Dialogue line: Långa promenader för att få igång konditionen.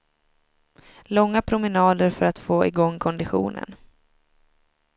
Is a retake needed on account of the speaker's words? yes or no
no